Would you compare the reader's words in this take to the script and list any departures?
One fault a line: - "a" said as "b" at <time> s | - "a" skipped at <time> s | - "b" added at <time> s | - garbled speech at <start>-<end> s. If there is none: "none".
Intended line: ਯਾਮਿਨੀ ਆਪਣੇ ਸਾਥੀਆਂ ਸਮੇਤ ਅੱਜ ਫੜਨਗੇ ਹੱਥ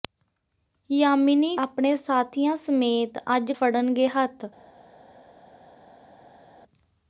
none